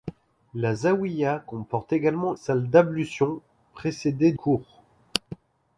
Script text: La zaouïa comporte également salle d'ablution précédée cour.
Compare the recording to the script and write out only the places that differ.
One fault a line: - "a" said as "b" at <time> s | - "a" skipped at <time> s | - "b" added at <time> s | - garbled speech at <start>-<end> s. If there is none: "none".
none